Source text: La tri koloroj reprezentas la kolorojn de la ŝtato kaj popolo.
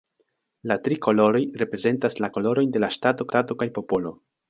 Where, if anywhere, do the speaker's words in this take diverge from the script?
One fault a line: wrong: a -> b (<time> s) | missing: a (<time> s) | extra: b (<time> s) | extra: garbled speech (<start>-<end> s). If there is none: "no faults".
extra: ŝtato (3.3 s)